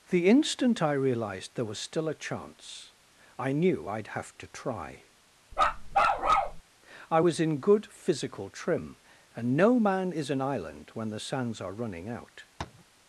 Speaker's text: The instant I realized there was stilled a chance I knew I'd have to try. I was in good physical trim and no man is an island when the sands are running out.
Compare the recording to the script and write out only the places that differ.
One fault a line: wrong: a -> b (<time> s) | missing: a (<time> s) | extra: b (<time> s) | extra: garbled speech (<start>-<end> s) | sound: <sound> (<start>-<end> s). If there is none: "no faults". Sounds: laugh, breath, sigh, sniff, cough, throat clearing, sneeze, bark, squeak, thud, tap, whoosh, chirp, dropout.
wrong: stilled -> still (1.8 s)
sound: bark (5.5-6.6 s)
sound: tap (12.6-12.8 s)